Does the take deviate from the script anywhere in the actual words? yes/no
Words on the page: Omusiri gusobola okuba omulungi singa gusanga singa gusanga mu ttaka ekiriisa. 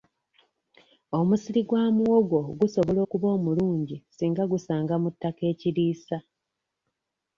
yes